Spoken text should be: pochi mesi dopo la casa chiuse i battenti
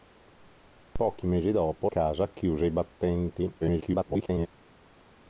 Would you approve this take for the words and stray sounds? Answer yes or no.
no